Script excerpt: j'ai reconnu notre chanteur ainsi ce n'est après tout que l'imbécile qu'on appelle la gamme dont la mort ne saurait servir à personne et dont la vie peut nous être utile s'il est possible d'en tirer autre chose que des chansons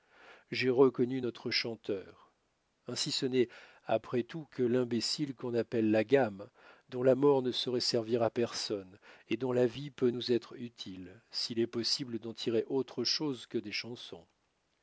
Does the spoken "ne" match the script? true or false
true